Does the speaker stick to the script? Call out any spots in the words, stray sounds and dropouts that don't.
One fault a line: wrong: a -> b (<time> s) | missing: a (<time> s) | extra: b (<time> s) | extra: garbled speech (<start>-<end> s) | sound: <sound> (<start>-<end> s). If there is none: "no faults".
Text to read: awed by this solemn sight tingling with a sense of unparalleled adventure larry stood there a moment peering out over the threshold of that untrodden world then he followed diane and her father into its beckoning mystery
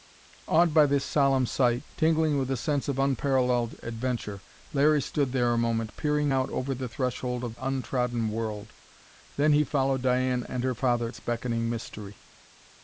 missing: that (7.5 s)
missing: into (11.1 s)